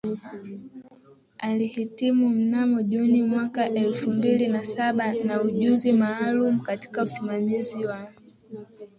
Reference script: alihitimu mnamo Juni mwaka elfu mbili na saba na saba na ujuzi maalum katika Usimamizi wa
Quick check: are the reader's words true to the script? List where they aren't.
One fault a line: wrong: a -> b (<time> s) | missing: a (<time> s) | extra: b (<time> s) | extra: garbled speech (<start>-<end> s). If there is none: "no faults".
missing: saba na (5.4 s)